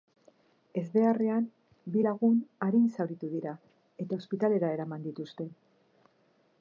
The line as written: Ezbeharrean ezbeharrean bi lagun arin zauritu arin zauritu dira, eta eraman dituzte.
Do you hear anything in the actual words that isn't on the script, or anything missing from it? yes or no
yes